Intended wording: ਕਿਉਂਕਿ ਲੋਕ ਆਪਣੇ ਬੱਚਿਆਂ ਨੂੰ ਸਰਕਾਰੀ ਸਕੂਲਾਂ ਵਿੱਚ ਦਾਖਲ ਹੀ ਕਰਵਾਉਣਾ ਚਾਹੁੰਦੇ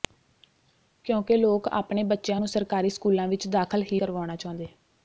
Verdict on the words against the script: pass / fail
pass